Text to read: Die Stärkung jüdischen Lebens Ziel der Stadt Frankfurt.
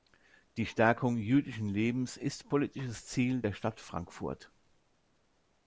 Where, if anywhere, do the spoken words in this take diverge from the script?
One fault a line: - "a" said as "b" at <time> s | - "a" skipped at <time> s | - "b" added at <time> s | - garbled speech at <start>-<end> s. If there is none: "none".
- "ist politisches" added at 2.2 s